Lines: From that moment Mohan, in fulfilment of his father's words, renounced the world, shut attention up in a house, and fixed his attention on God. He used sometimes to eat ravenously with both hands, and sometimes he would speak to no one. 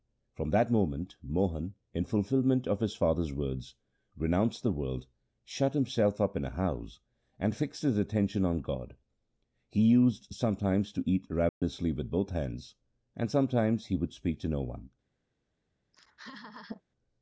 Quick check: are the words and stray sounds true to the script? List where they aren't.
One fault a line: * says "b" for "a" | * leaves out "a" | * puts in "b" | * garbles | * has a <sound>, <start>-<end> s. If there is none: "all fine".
* says "himself" for "attention"
* has a dropout, 11.5-11.6 s
* has a laugh, 15.9-16.8 s